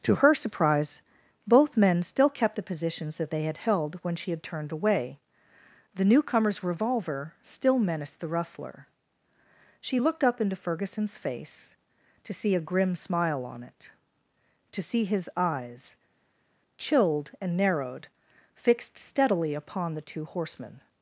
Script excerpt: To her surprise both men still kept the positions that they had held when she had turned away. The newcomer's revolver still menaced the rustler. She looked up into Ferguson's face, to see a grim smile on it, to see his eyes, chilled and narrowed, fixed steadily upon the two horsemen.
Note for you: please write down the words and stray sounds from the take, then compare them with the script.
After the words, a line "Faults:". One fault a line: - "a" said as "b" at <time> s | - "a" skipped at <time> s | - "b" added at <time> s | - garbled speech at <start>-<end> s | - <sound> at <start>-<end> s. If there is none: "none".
To her surprise both men still kept the positions that they had held when she had turned away. The newcomer's revolver still menaced the rustler. She looked up into Ferguson's face, to see a grim smile on it, to see his eyes, chilled and narrowed, fixed steadily upon the two horsemen.
Faults:
none